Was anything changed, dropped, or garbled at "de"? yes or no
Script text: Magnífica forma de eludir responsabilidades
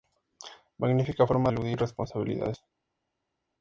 yes